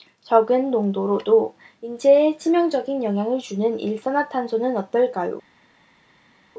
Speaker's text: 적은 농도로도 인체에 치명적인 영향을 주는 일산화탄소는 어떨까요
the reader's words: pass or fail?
pass